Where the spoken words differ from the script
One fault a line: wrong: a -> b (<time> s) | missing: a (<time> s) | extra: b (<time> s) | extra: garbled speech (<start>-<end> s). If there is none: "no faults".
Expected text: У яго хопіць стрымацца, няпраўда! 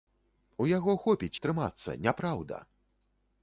no faults